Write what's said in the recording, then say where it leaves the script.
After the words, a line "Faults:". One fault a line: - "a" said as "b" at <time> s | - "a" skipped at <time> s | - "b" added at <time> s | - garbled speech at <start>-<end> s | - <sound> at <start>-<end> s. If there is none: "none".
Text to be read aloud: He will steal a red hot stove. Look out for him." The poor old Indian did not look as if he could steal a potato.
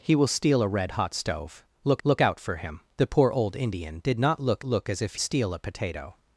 He will steal a red hot stove. Look look out for him." The poor old Indian did not look look as if steal a potato.
Faults:
- "look" added at 2.0 s
- "look" added at 4.6 s
- "he could" skipped at 5.2 s